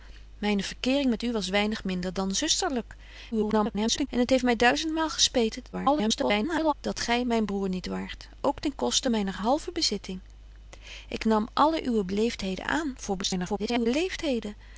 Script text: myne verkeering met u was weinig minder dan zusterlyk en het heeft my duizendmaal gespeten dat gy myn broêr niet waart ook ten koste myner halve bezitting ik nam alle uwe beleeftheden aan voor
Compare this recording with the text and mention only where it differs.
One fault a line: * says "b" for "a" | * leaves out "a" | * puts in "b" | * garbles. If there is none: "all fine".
* garbles
* garbles
* garbles